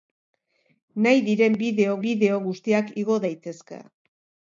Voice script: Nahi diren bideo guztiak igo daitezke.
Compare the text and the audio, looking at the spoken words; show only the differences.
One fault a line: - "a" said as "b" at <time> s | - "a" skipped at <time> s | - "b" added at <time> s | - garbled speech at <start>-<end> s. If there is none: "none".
- "bideo" added at 2.0 s